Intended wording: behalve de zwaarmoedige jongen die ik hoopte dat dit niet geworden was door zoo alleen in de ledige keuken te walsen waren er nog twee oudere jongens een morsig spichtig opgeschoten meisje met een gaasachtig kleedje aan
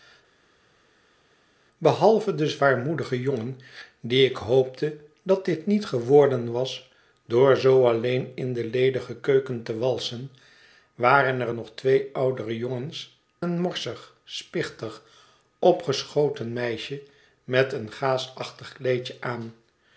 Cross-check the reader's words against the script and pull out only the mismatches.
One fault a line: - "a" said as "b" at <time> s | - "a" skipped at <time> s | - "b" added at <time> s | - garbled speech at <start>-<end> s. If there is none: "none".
none